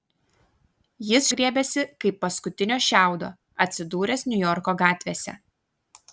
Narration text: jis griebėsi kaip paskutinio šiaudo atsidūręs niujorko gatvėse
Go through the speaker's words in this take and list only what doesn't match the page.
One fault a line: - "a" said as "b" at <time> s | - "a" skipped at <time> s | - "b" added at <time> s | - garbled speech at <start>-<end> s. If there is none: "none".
none